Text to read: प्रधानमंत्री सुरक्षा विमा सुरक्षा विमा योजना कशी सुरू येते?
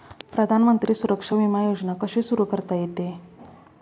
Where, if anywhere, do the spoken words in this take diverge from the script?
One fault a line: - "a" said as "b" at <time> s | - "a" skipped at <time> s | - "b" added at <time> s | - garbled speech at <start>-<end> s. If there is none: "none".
- "सुरक्षा विमा" skipped at 1.6 s
- "करता" added at 2.4 s